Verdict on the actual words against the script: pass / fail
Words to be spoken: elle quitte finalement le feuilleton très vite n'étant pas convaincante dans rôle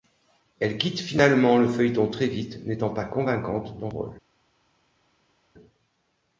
pass